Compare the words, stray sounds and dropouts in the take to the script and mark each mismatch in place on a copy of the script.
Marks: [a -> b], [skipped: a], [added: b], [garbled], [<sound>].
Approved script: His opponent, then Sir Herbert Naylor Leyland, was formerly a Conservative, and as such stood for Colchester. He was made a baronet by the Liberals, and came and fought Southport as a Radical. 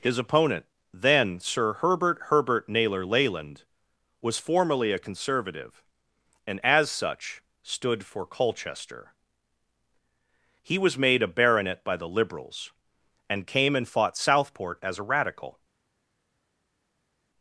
His opponent, then Sir Herbert [added: Herbert] Naylor Leyland, was formerly a Conservative, and as such stood for Colchester. He was made a baronet by the Liberals, and came and fought Southport as a Radical.